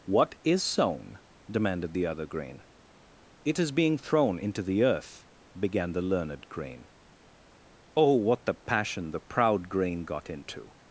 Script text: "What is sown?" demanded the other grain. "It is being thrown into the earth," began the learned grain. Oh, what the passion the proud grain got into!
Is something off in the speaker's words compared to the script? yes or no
no